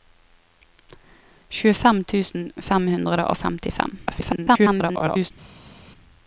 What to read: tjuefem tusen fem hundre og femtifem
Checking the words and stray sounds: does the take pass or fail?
fail